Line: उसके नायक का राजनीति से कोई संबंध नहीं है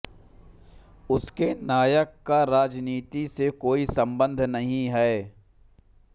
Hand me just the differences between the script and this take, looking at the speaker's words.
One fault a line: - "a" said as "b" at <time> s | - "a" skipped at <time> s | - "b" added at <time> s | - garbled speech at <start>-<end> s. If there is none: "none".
none